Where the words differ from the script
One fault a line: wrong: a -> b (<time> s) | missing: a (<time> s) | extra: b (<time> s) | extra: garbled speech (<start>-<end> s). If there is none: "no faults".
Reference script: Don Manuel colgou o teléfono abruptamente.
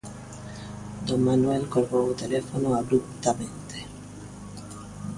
no faults